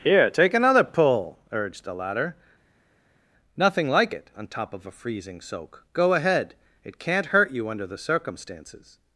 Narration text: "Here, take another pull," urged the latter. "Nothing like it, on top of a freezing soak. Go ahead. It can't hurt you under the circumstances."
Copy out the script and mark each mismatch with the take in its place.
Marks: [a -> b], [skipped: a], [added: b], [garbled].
"Here, take another pull," urged the latter. "Nothing like it, on top of a freezing soak. Go ahead. It can't hurt you under the circumstances."